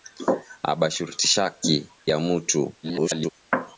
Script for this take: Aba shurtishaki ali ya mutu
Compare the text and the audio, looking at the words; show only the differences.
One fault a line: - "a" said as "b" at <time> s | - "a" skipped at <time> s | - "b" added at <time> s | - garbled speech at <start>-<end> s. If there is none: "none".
- "ali" skipped at 1.9 s
- garbled speech at 2.8-3.3 s